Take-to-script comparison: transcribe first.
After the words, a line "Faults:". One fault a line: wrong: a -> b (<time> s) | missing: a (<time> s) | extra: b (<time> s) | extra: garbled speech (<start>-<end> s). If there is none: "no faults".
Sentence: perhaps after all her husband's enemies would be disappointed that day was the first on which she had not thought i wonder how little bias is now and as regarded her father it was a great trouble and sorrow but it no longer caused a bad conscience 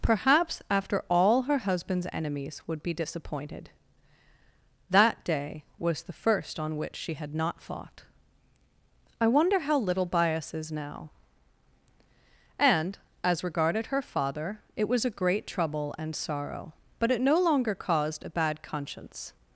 perhaps after all her husband's enemies would be disappointed that day was the first on which she had not fought i wonder how little bias is now and as regarded her father it was a great trouble and sorrow but it no longer caused a bad conscience
Faults:
wrong: thought -> fought (7.6 s)